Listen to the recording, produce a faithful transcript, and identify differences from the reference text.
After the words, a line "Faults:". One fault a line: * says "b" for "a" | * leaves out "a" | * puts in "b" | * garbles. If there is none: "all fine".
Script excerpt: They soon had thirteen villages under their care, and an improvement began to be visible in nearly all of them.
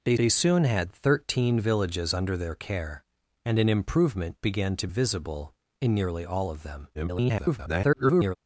They they soon had thirteen villages under their care, and an improvement began to visible in nearly all of them. [garbled]
Faults:
* puts in "they"
* leaves out "be"
* garbles